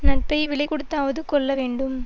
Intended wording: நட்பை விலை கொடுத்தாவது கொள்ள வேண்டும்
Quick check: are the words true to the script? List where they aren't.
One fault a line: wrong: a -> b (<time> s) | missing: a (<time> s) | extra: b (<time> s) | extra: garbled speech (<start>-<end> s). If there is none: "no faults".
no faults